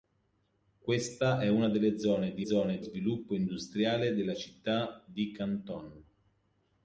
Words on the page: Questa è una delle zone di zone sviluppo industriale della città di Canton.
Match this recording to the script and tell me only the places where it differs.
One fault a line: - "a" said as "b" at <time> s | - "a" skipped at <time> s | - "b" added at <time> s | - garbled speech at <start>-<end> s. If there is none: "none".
none